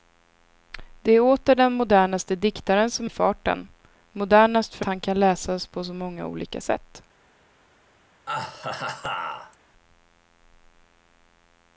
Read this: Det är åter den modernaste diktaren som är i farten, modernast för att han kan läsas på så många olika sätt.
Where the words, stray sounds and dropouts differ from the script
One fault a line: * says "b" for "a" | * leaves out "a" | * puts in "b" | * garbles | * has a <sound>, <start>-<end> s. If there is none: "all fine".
* leaves out "är"
* leaves out "att"
* has a laugh, 8.3-9.6 s